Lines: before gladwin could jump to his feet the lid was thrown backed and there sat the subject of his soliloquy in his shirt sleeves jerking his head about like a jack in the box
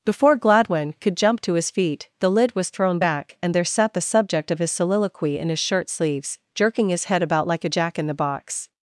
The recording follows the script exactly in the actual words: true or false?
false